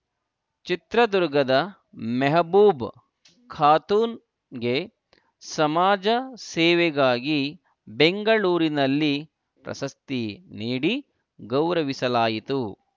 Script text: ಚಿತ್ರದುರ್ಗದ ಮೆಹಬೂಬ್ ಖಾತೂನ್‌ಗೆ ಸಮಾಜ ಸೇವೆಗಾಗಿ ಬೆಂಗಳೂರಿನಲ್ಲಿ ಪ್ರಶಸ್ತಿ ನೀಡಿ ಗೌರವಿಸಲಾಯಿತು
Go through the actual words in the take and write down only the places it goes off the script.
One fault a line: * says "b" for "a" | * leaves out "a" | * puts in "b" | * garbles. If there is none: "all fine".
all fine